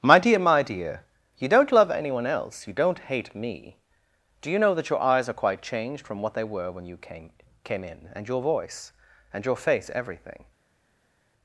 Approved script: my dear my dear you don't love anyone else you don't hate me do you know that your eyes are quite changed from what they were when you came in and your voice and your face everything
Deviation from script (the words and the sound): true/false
true